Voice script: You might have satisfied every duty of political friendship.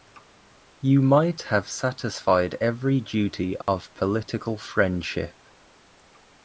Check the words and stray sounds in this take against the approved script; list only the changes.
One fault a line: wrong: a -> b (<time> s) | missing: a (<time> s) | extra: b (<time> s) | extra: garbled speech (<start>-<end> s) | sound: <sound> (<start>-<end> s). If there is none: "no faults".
sound: dropout (3.6-3.7 s)